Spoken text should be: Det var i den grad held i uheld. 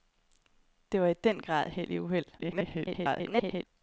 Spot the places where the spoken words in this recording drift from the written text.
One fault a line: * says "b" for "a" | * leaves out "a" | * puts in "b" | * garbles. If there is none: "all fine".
* garbles